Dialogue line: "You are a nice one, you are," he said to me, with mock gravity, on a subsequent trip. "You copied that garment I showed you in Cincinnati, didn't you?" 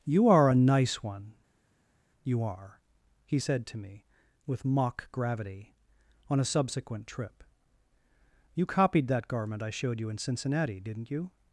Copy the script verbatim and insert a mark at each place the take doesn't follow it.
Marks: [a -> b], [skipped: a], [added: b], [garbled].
"You are a nice one, you are," he said to me, with mock gravity, on a subsequent trip. "You copied that garment I showed you in Cincinnati, didn't you?"